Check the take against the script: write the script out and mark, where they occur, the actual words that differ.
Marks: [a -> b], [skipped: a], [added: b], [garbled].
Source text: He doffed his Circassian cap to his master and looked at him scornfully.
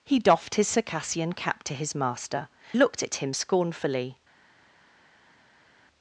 He doffed his Circassian cap to his master [skipped: and] looked at him scornfully.